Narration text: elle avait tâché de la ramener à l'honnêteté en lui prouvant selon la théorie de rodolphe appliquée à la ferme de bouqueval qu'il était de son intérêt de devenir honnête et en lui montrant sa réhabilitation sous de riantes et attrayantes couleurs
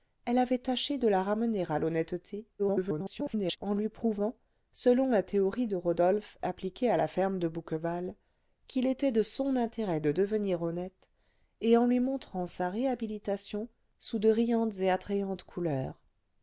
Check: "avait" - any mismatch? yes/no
no